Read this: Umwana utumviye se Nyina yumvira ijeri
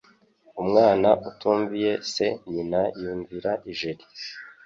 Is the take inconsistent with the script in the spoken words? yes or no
no